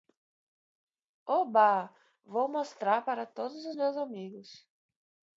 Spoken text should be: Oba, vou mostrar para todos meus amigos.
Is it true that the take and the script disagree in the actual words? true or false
true